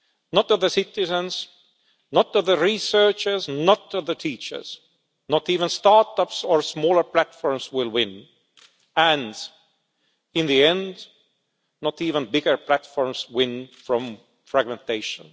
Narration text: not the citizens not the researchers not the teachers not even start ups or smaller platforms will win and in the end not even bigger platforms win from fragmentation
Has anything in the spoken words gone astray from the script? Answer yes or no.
no